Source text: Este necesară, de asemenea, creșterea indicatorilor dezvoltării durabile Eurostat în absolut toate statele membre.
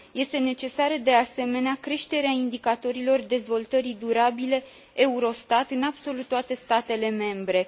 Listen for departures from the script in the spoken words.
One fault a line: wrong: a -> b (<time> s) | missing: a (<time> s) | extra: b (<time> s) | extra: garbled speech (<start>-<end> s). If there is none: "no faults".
no faults